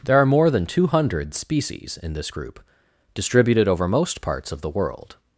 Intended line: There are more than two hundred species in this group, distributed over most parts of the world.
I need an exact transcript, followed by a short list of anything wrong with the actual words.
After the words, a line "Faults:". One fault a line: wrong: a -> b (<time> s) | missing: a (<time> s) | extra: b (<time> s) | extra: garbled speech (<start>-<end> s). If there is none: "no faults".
There are more than two hundred species in this group, distributed over most parts of the world.
Faults:
no faults